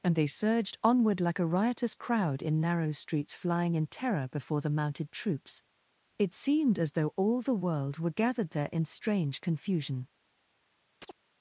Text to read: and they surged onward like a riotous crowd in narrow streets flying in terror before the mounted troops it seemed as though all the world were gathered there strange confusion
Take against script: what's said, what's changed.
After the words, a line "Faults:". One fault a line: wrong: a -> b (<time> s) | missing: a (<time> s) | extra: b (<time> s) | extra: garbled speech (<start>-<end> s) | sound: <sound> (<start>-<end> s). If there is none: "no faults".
and they surged onward like a riotous crowd in narrow streets flying in terror before the mounted troops it seemed as though all the world were gathered there in strange confusion
Faults:
extra: in (8.7 s)
sound: chirp (11.0-11.1 s)